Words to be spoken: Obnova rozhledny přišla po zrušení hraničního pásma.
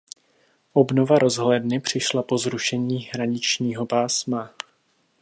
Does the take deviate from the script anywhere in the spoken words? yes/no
no